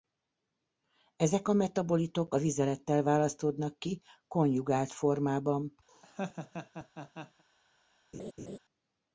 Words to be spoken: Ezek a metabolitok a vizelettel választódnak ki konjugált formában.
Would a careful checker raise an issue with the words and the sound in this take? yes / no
yes